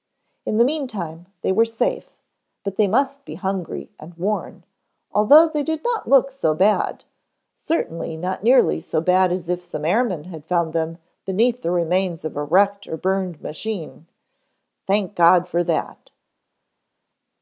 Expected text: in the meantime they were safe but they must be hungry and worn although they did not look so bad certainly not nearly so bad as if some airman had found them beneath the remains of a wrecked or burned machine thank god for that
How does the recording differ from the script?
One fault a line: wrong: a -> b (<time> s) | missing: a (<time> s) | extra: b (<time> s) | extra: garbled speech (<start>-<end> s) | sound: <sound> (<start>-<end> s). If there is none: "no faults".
no faults